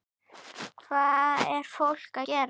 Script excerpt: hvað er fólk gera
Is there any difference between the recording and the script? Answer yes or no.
no